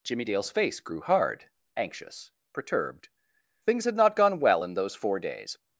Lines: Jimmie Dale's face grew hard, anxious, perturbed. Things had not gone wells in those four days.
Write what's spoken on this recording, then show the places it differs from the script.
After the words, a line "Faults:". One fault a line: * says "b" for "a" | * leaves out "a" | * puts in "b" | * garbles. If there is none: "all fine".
Jimmie Dale's face grew hard, anxious, perturbed. Things had not gone well in those four days.
Faults:
* says "well" for "wells"